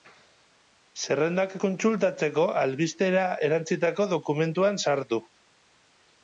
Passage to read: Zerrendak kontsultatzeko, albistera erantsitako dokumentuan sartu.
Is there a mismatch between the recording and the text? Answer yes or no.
no